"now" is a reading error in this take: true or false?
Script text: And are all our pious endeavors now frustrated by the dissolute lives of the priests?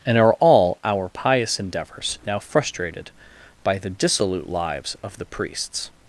false